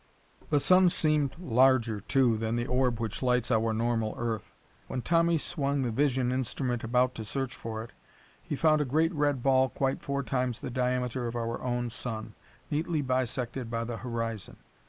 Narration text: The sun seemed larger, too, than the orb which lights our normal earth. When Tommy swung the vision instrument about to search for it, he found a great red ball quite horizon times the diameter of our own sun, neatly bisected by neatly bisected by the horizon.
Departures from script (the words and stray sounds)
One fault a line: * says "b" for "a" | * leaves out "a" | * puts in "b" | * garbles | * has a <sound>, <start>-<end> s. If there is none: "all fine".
* says "four" for "horizon"
* leaves out "neatly bisected by"